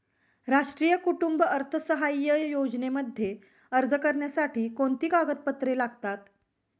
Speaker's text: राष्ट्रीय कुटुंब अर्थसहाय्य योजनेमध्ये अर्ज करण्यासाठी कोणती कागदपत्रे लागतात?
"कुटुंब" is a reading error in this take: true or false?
false